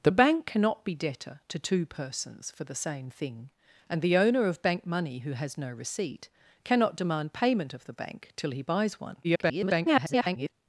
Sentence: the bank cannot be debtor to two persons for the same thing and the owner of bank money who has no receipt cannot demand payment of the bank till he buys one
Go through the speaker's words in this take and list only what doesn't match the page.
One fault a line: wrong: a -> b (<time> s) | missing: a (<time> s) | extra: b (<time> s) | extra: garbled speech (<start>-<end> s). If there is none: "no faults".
extra: garbled speech (9.2-10.5 s)